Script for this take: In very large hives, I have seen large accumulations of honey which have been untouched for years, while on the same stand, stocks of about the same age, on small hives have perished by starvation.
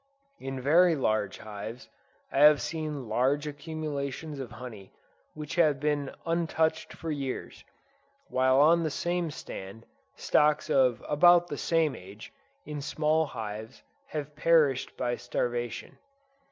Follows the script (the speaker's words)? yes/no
no